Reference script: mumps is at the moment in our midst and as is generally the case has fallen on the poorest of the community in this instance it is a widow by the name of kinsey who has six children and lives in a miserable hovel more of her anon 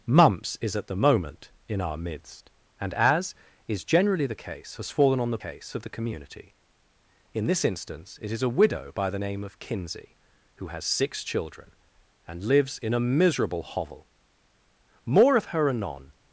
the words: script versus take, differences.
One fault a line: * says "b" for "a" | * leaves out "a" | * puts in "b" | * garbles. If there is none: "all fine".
* says "case" for "poorest"